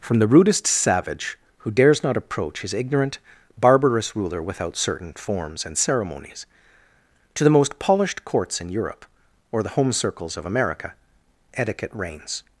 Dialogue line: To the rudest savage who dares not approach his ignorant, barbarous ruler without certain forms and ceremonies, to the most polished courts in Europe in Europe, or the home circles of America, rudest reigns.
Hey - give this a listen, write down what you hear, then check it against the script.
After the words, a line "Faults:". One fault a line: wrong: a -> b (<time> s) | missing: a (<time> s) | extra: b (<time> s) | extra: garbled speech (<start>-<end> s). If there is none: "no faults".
From the rudest savage who dares not approach his ignorant, barbarous ruler without certain forms and ceremonies, to the most polished courts in Europe, or the home circles of America, etiquette reigns.
Faults:
wrong: To -> From (0.0 s)
missing: in Europe (9.1 s)
wrong: rudest -> etiquette (11.5 s)